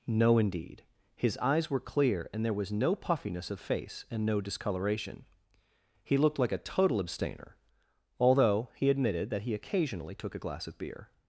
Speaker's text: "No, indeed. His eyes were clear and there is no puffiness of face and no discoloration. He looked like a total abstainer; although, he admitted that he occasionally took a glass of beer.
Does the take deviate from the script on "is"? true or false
true